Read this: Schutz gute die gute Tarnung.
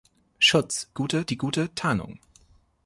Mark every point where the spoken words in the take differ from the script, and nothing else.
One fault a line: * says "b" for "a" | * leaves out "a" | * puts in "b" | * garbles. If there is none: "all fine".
all fine